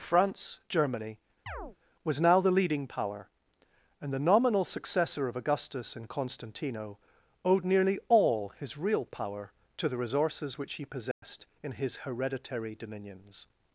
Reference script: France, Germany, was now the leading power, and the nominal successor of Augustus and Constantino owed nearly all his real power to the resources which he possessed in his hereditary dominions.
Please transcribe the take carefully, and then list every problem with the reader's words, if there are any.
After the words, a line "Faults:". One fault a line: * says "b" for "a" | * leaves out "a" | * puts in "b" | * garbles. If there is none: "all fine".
France, Germany, was now the leading power, and the nominal successor of Augustus and Constantino owed nearly all his real power to the resources which he possessed in his hereditary dominions.
Faults:
all fine